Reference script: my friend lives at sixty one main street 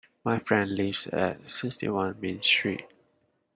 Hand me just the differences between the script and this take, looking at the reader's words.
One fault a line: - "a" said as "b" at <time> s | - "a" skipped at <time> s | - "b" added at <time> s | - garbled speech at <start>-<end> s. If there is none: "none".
none